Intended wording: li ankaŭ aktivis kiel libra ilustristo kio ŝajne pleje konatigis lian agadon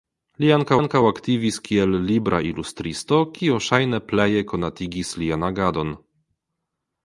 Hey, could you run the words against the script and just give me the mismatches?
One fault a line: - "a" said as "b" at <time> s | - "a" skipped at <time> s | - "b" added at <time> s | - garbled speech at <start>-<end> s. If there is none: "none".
- "ankaŭ" added at 0.8 s